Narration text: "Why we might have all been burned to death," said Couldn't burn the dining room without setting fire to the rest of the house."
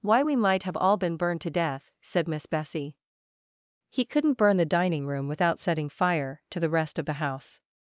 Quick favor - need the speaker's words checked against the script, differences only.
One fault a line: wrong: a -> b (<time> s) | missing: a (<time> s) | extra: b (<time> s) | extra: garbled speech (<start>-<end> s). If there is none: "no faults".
extra: Miss Bessie He (2.3 s)